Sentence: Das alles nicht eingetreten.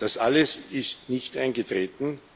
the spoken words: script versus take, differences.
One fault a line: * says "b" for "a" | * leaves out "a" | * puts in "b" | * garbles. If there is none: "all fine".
* puts in "ist"